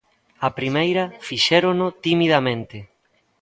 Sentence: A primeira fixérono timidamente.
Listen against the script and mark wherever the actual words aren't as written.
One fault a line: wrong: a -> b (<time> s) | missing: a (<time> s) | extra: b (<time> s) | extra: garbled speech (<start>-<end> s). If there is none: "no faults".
no faults